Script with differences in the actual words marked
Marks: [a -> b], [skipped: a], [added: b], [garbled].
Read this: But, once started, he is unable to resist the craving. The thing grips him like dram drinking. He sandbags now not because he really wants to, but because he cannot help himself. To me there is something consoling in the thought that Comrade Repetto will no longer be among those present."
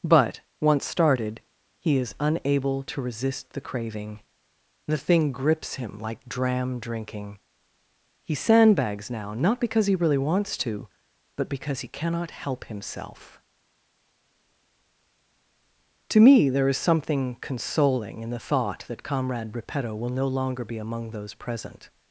But, once started, he is unable to resist the craving. The thing grips him like dram drinking. He sandbags now not because he really wants to, but because he cannot help himself. To me there is something consoling in the thought that Comrade Repetto will no longer be among those present."